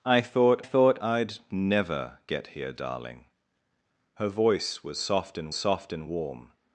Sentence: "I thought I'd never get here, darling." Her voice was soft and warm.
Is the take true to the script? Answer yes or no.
no